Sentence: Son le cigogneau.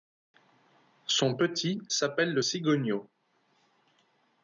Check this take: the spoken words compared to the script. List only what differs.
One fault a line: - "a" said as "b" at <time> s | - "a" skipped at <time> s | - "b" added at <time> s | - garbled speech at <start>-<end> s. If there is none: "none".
- "petit s'appelle" added at 1.3 s